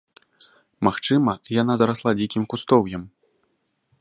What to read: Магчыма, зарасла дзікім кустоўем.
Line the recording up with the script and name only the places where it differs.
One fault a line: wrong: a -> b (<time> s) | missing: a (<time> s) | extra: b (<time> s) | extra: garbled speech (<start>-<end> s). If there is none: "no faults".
extra: яна (1.6 s)